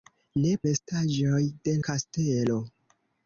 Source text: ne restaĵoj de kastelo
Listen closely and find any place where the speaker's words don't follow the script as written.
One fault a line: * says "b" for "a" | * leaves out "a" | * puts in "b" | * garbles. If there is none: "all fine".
all fine